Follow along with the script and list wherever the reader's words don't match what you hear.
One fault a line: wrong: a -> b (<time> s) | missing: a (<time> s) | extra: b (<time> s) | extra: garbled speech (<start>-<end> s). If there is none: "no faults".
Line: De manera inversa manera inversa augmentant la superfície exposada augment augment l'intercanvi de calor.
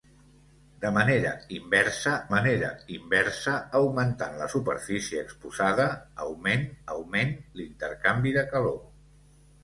no faults